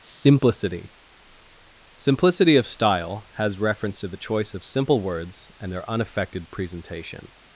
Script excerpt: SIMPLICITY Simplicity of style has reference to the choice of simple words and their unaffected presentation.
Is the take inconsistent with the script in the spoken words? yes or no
no